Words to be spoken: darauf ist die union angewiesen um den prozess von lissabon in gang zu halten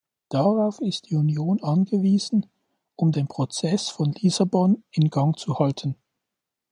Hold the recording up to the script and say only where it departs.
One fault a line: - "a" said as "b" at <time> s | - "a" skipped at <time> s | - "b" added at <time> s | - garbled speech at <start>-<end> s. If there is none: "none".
none